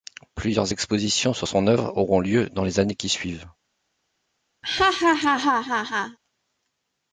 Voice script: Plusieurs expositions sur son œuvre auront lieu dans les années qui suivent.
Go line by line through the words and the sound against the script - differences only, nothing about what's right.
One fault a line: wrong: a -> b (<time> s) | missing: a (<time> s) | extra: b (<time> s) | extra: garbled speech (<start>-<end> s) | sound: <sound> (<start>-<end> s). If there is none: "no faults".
sound: laugh (4.6-6.2 s)